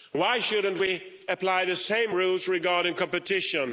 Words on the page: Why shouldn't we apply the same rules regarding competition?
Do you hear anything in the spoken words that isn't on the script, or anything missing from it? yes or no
no